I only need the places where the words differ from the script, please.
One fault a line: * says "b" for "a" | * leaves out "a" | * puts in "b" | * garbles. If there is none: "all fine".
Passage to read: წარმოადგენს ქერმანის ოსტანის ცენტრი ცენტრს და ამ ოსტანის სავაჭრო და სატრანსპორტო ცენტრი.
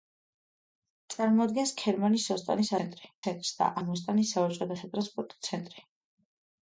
all fine